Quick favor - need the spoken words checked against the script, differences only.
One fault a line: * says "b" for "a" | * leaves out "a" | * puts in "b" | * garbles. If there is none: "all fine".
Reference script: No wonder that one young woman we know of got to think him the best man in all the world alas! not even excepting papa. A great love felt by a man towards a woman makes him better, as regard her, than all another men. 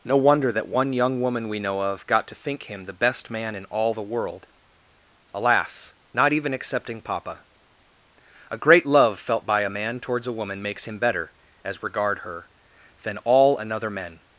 all fine